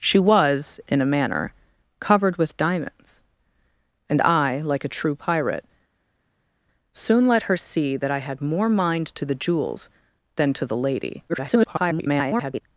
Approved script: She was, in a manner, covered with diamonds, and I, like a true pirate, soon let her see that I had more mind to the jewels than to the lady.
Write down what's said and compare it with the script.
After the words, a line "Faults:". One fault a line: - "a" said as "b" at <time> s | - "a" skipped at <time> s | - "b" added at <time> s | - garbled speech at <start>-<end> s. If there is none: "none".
She was, in a manner, covered with diamonds, and I, like a true pirate, soon let her see that I had more mind to the jewels than to the lady. [garbled]
Faults:
- garbled speech at 11.3-12.6 s